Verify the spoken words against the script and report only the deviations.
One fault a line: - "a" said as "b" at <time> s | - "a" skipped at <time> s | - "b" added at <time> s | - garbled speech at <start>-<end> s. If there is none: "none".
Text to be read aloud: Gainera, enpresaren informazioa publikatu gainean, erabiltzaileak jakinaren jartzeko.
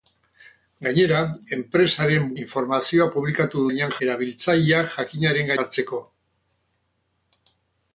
none